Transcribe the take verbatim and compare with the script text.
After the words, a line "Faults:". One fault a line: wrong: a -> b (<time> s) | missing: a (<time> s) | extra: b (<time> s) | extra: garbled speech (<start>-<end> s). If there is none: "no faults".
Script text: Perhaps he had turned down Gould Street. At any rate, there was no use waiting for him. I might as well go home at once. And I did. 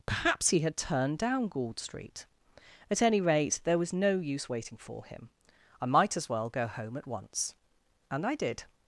Perhaps he had turned down Gould Street. At any rate, there was no use waiting for him. I might as well go home at once. And I did.
Faults:
no faults